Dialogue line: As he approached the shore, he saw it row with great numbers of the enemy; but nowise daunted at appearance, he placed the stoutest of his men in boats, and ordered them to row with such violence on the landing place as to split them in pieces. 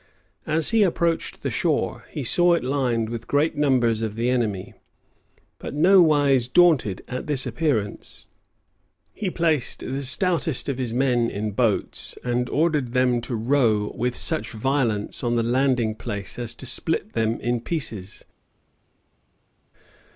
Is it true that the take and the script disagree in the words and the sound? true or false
true